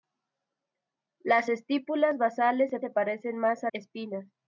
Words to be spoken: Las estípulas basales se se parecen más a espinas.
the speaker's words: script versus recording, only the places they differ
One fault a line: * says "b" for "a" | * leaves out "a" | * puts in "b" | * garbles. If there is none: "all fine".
all fine